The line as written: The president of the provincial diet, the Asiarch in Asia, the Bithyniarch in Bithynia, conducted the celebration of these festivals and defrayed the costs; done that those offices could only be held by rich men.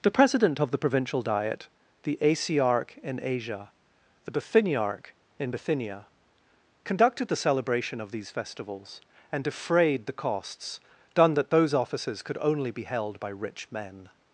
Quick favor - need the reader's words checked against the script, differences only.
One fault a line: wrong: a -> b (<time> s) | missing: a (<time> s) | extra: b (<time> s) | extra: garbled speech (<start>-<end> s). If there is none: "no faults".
no faults